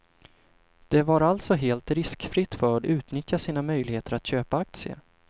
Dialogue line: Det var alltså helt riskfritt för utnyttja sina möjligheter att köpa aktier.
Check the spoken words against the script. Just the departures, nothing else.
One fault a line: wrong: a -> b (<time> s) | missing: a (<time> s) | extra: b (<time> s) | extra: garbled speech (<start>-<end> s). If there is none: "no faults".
no faults